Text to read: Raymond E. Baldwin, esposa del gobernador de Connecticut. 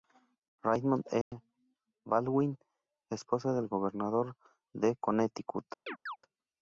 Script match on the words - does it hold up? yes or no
yes